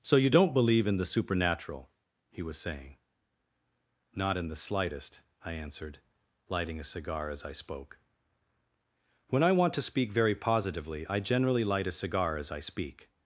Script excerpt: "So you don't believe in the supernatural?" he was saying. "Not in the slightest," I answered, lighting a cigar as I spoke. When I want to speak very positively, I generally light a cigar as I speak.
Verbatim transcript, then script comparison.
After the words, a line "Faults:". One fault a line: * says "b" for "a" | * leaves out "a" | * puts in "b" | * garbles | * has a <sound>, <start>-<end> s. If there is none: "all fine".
"So you don't believe in the supernatural?" he was saying. "Not in the slightest," I answered, lighting a cigar as I spoke. When I want to speak very positively, I generally light a cigar as I speak.
Faults:
all fine